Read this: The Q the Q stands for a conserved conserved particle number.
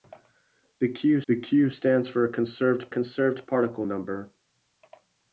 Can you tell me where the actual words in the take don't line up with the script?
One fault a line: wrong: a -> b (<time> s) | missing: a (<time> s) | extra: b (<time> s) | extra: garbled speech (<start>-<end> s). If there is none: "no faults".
no faults